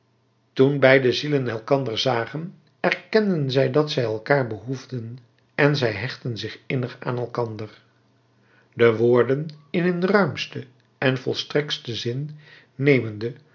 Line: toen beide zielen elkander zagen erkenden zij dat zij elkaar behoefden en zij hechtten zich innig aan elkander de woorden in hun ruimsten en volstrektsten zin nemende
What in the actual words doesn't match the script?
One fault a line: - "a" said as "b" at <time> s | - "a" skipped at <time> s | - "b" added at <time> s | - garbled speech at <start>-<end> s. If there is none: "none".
none